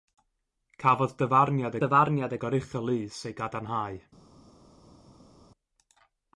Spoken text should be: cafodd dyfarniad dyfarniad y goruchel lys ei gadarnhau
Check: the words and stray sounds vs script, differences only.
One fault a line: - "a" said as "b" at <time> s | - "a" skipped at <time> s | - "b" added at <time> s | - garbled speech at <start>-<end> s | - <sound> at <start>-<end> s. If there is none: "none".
none